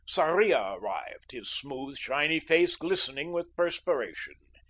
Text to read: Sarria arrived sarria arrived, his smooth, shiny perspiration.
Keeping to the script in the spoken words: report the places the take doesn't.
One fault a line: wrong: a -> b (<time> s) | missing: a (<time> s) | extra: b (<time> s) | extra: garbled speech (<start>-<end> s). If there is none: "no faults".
missing: sarria arrived (1.3 s)
extra: face glistening with (2.4 s)